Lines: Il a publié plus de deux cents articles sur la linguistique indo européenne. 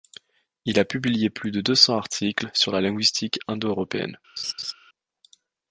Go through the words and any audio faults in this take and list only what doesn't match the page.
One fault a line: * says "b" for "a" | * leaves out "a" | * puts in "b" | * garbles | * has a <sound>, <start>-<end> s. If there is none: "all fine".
* has a laugh, 4.4-4.7 s